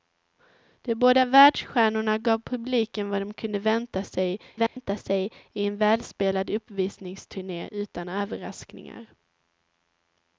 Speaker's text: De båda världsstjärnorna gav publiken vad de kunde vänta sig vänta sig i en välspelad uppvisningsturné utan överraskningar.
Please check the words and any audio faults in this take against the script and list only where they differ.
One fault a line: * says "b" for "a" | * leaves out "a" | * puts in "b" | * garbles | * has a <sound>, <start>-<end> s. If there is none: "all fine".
* has a dropout, 4.7-4.8 s